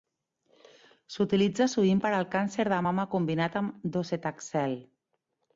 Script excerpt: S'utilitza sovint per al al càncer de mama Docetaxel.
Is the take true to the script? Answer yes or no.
no